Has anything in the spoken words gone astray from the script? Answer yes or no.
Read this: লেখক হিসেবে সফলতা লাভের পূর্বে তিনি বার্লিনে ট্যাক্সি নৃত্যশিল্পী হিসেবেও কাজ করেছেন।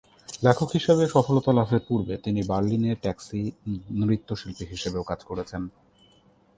no